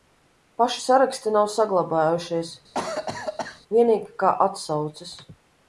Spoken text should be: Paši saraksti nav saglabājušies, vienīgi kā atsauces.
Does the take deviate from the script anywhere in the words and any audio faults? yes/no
yes